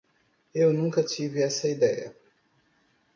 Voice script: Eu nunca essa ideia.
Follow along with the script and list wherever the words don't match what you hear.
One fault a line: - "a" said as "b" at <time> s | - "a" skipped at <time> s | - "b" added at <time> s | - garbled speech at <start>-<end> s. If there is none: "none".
- "tive" added at 1.0 s